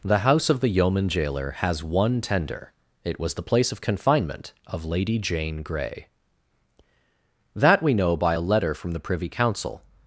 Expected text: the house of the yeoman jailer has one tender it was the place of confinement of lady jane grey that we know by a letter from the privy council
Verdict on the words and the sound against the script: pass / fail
pass